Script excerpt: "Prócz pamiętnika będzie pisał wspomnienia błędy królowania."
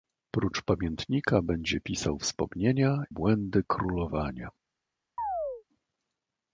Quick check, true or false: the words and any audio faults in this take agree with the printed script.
false